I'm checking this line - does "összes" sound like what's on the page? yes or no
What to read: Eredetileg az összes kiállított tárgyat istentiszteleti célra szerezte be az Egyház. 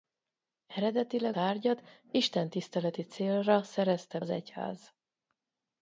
no